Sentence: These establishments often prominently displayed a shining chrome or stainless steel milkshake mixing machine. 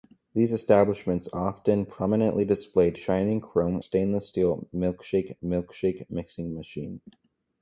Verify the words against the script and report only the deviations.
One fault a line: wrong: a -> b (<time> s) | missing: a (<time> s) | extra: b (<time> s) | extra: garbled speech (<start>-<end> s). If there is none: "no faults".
missing: a (3.0 s)
missing: or (3.8 s)
extra: milkshake (5.4 s)